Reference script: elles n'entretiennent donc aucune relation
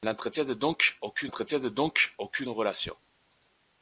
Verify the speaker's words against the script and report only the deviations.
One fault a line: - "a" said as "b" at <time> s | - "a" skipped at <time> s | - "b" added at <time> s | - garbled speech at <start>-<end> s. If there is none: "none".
- "n'entretiennent donc aucune" added at 1.2 s